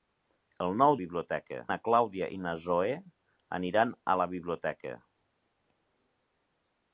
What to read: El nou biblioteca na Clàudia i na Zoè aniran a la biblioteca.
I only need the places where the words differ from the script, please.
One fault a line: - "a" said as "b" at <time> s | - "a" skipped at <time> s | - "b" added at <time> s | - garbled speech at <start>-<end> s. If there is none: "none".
none